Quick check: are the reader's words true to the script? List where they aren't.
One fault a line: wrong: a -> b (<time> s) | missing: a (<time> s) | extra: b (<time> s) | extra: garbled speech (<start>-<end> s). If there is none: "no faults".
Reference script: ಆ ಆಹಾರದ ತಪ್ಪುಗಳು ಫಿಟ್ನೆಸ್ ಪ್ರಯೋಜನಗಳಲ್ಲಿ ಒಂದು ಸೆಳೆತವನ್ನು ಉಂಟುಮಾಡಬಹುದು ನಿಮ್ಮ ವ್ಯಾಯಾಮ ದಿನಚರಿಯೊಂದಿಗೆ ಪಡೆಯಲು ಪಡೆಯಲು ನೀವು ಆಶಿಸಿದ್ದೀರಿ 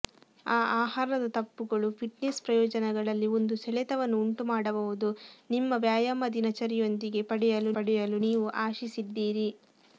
no faults